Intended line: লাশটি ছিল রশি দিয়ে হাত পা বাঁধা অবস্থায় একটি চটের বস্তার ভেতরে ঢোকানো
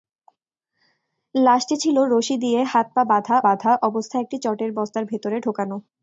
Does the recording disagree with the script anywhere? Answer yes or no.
yes